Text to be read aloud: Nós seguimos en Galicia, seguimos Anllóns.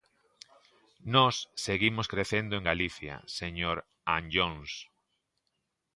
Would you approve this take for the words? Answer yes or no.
no